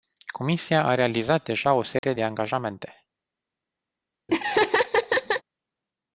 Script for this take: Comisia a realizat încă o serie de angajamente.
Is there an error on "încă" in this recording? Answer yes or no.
yes